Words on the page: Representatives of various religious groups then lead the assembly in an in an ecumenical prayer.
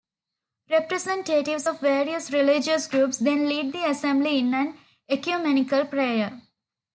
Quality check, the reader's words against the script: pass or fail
fail